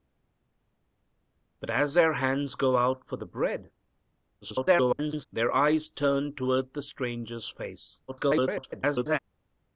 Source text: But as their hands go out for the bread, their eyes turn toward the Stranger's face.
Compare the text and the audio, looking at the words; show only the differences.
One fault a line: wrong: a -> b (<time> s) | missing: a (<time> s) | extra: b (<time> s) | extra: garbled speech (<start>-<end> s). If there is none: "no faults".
extra: garbled speech (4.4-5.3 s)
extra: garbled speech (8.1-9.2 s)